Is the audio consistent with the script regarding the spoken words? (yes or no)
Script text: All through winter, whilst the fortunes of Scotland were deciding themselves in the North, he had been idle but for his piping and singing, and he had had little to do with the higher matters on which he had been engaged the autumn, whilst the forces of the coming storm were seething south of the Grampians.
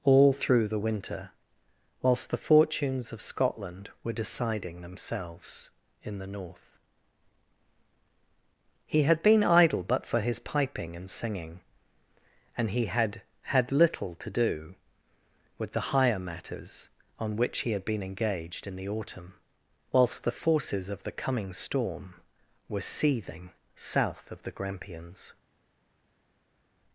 no